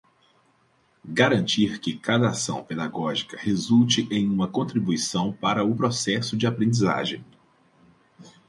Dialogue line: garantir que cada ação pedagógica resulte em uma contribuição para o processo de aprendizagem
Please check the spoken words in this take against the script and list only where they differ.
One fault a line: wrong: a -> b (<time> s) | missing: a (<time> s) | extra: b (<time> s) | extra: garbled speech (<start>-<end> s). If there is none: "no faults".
no faults